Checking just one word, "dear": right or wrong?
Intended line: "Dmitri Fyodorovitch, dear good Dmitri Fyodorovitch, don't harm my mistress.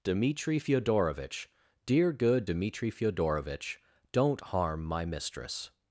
right